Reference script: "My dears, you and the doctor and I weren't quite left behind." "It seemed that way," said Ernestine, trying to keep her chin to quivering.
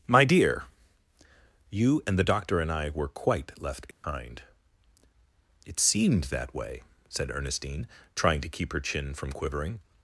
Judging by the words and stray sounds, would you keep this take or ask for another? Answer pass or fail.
fail